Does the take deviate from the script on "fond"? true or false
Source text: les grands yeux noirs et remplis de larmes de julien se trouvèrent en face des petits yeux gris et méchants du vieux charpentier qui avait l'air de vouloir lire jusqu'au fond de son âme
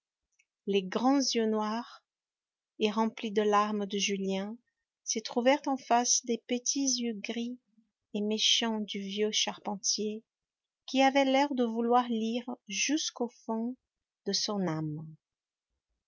false